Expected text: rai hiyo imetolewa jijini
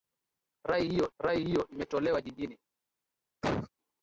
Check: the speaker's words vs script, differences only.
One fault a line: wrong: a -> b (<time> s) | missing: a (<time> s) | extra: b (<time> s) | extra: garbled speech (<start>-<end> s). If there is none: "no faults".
extra: rai hiyo (1.2 s)